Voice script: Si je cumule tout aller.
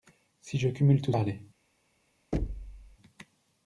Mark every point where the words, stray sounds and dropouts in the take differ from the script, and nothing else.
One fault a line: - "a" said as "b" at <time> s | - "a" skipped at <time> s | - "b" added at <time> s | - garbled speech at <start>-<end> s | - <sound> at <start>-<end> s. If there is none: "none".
- thud at 2.3-3.0 s